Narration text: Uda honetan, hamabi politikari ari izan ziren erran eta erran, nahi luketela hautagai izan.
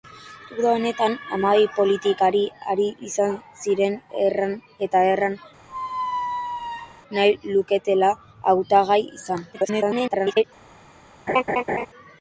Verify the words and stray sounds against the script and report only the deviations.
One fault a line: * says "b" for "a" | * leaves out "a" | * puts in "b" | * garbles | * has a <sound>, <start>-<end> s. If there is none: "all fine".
* has a squeak, 5.7-7.0 s
* garbles
* has a laugh, 11.3-11.9 s